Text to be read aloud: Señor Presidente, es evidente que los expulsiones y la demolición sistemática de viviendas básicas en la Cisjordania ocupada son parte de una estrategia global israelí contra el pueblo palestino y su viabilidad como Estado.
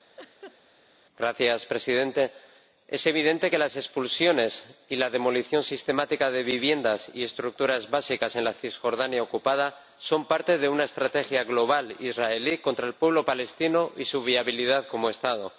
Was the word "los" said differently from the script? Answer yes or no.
yes